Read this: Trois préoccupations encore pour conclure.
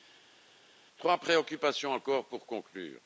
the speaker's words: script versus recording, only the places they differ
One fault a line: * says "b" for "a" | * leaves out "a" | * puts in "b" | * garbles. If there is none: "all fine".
all fine